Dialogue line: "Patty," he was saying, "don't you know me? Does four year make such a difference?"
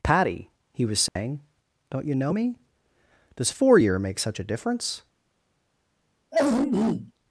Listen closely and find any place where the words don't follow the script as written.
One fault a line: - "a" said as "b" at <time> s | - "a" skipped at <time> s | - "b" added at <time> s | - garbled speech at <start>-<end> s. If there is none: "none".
none